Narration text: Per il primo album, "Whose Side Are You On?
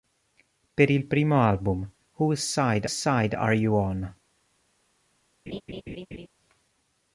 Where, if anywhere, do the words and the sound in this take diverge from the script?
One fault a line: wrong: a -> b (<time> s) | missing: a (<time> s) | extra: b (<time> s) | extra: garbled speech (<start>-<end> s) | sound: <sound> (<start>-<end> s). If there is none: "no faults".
extra: Side (2.9 s)
sound: laugh (5.5-6.3 s)